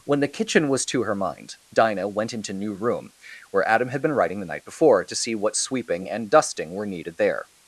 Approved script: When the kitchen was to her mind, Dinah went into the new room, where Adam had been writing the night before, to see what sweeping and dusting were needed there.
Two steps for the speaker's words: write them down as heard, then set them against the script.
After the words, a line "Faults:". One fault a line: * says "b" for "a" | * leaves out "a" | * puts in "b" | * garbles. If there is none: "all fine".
When the kitchen was to her mind, Dinah went into new room, where Adam had been writing the night before, to see what sweeping and dusting were needed there.
Faults:
* leaves out "the"